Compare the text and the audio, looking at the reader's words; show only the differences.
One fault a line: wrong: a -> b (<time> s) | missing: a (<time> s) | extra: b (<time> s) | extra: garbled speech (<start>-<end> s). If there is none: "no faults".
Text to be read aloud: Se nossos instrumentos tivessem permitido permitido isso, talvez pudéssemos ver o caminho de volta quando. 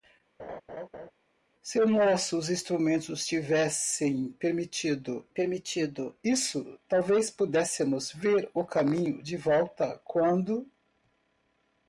no faults